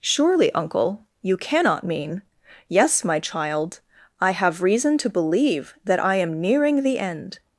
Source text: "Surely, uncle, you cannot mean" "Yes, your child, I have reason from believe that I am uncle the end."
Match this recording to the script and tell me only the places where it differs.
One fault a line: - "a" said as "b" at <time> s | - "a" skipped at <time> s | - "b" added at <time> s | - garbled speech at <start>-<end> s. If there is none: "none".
- "your" said as "my" at 3.0 s
- "from" said as "to" at 5.0 s
- "uncle" said as "nearing" at 6.4 s